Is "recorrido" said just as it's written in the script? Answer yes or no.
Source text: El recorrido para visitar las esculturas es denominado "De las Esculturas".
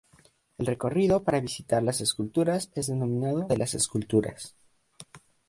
yes